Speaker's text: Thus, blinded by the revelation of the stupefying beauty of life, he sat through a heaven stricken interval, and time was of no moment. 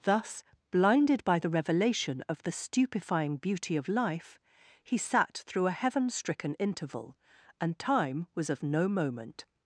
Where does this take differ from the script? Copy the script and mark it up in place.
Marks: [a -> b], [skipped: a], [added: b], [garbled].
Thus, blinded by the revelation of the stupefying beauty of life, he sat through a heaven stricken interval, and time was of no moment.